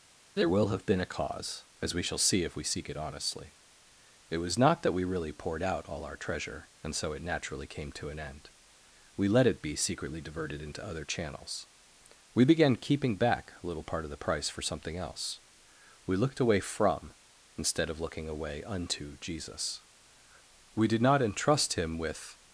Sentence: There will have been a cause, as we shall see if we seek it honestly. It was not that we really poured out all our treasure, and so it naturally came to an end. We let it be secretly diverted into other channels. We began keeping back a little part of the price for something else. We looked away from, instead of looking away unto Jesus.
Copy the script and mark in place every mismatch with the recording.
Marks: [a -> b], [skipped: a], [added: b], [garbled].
There will have been a cause, as we shall see if we seek it honestly. It was not that we really poured out all our treasure, and so it naturally came to an end. We let it be secretly diverted into other channels. We began keeping back a little part of the price for something else. We looked away from, instead of looking away unto Jesus. [added: We did not entrust Him with]